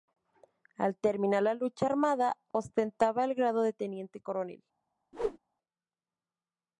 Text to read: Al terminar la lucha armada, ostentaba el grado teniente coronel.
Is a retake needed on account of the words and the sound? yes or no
yes